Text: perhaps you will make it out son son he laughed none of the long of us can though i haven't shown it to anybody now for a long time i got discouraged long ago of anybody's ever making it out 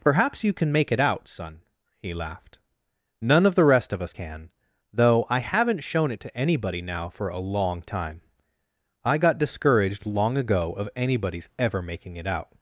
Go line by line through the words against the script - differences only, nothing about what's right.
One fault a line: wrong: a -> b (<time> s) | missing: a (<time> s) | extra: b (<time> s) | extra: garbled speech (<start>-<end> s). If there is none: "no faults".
wrong: will -> can (0.5 s)
missing: son (1.6 s)
wrong: long -> rest (3.6 s)